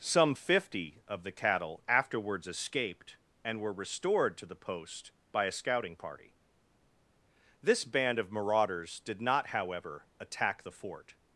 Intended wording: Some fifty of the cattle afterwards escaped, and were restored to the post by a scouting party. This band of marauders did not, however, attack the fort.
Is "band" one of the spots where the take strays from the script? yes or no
no